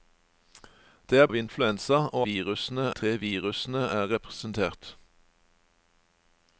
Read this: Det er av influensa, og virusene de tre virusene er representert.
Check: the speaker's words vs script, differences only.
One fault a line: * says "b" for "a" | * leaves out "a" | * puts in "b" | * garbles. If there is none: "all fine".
all fine